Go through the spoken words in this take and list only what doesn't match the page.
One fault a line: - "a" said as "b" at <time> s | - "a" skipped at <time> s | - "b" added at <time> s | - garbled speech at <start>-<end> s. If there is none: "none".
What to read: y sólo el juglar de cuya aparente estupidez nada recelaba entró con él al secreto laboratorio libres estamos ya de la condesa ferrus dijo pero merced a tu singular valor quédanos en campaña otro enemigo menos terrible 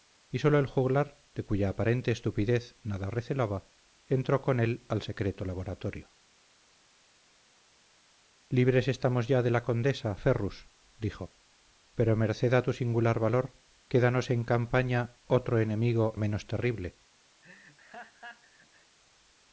none